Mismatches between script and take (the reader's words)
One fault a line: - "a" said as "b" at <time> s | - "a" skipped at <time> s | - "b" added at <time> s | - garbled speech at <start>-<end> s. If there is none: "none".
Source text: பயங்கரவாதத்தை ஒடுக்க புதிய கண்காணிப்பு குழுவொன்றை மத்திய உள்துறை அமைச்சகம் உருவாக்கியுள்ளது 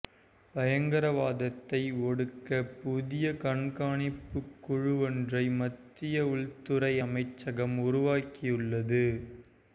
none